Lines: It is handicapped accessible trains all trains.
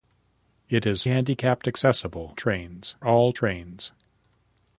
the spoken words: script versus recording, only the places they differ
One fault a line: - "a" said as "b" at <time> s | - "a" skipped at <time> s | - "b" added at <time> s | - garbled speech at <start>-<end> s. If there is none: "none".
none